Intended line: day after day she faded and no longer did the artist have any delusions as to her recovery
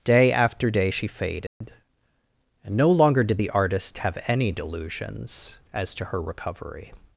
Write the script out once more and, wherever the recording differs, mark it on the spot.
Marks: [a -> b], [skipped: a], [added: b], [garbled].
day after day she faded and no longer did the artist have any delusions as to her recovery